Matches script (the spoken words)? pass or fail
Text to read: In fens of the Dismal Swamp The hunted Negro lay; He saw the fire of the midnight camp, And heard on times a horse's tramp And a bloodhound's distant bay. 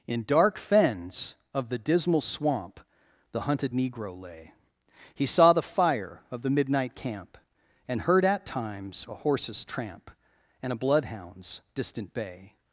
fail